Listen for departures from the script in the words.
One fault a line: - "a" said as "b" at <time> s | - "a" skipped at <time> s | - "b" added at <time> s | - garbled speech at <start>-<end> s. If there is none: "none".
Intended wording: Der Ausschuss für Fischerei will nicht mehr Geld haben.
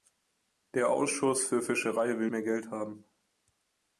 - "nicht" skipped at 2.3 s